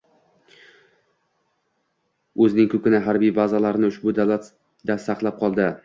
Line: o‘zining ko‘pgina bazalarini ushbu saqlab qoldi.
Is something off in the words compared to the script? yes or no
yes